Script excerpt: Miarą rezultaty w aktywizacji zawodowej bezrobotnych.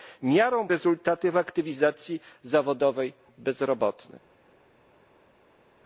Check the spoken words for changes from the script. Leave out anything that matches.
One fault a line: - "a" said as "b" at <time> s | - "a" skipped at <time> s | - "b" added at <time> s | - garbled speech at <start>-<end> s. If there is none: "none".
none